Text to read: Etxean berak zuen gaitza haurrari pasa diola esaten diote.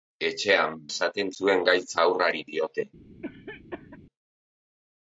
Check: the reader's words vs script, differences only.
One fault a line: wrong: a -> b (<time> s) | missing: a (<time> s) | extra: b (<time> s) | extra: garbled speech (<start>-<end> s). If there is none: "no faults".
wrong: berak -> esaten (0.9 s)
missing: pasa diola esaten (2.4 s)